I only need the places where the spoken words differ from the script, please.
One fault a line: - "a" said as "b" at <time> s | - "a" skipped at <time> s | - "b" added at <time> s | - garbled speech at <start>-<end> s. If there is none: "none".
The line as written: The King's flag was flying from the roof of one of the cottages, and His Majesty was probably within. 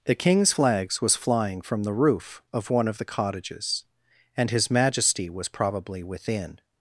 - "flag" said as "flags" at 0.5 s